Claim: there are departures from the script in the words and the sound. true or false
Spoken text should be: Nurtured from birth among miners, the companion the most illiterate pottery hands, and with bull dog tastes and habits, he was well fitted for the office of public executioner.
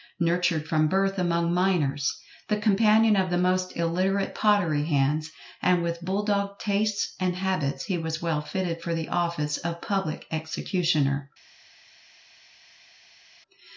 true